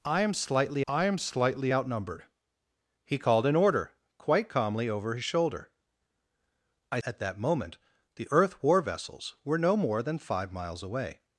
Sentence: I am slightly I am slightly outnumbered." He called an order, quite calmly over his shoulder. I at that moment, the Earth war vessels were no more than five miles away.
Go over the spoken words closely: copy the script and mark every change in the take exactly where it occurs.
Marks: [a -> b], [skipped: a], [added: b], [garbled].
I am slightly I am slightly outnumbered." He called an order, quite calmly over his shoulder. I at that moment, the Earth war vessels were no more than five miles away.